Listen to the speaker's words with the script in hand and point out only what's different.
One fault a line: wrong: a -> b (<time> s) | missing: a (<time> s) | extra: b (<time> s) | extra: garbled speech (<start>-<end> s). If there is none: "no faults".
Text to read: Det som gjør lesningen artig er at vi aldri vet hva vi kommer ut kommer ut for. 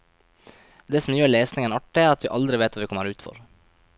missing: kommer ut (3.2 s)